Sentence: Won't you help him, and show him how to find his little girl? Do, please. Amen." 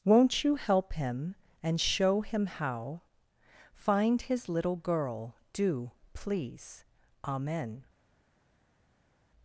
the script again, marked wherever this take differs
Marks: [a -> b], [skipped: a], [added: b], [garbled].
Won't you help him, and show him how [skipped: to] find his little girl? Do, please. Amen."